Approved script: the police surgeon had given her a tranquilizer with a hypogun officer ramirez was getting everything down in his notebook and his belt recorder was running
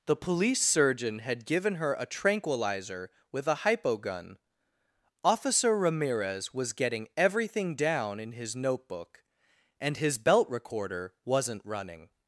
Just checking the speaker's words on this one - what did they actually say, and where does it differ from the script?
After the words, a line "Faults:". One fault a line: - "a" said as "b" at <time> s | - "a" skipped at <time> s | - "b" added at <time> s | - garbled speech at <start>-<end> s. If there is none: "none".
the police surgeon had given her a tranquilizer with a hypogun officer ramirez was getting everything down in his notebook and his belt recorder wasn't running
Faults:
- "was" said as "wasn't" at 11.2 s